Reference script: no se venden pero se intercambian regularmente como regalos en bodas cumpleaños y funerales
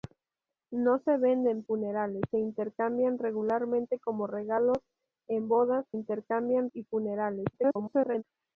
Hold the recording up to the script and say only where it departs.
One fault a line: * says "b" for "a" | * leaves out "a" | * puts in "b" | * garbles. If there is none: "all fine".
* says "funerales" for "pero"
* says "intercambian" for "cumpleaños"
* garbles